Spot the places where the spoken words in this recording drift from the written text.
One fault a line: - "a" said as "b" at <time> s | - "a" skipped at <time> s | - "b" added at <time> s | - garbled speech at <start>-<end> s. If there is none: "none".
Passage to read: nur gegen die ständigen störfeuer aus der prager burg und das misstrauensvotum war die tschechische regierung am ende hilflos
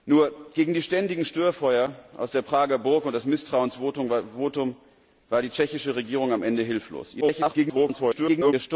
- garbled speech at 7.2-8.5 s